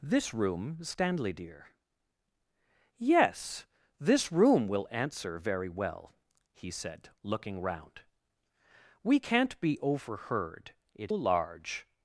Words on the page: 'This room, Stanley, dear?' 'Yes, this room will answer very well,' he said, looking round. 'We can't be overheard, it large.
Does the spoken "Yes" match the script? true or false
true